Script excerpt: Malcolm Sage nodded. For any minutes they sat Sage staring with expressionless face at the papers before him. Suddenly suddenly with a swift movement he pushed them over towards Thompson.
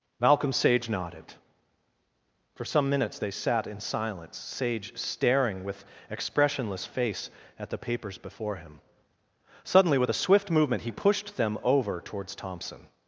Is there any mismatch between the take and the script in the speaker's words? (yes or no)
yes